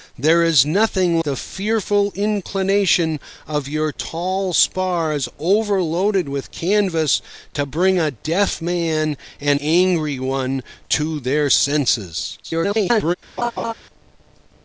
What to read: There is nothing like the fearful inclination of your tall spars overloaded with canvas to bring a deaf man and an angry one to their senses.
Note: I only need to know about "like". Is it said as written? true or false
false